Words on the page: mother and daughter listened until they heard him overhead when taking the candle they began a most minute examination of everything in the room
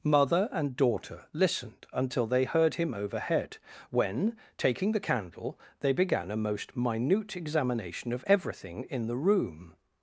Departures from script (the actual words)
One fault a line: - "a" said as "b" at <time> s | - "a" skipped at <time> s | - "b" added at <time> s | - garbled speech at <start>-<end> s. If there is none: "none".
none